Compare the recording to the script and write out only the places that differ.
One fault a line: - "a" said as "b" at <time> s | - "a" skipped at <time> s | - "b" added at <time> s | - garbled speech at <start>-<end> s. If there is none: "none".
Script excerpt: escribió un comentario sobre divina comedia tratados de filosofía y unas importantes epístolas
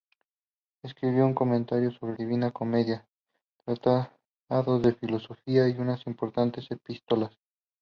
none